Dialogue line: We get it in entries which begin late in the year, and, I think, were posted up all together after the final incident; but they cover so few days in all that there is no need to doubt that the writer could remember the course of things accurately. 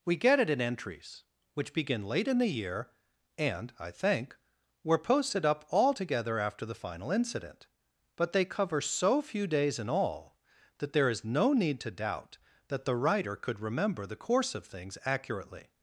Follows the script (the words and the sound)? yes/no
yes